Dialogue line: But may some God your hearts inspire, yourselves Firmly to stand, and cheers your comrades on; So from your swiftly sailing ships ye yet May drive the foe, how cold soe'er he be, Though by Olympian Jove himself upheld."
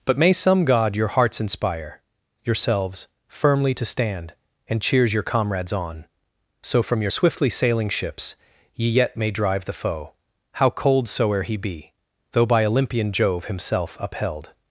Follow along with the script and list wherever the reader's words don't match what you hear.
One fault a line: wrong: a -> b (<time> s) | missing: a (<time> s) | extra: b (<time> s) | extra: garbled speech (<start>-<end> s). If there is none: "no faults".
no faults